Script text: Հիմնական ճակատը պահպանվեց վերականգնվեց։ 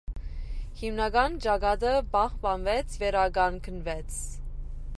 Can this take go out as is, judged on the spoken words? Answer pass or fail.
pass